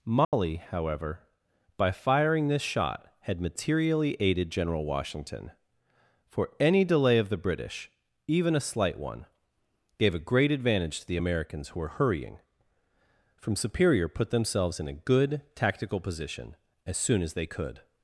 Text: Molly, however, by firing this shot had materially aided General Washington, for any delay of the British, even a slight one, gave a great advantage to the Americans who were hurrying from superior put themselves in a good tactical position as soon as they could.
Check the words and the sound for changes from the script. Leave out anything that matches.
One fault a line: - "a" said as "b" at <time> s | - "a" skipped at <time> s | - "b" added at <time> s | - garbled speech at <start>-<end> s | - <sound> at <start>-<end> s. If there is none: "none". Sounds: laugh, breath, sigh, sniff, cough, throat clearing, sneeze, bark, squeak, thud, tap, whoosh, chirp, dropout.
- dropout at 0.2-0.3 s